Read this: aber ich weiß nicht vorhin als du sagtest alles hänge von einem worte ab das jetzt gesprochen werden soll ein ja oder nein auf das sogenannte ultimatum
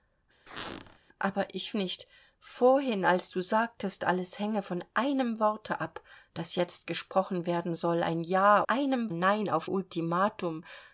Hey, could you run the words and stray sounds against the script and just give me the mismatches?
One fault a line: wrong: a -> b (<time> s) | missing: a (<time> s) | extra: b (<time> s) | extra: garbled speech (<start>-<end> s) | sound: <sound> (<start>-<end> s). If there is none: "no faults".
sound: squeak (0.5-1.0 s)
missing: weiß (1.8 s)
wrong: oder -> einem (8.7 s)
missing: das sogenannte (9.7 s)